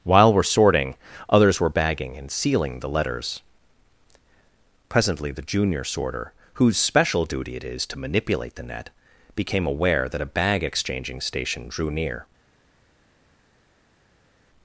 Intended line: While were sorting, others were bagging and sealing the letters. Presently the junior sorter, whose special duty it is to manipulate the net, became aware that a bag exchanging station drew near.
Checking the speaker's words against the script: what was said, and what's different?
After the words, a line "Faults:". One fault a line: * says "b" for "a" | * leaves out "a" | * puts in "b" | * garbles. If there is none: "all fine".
While were sorting, others were bagging and sealing the letters. Presently the junior sorter, whose special duty it is to manipulate the net, became aware that a bag exchanging station drew near.
Faults:
all fine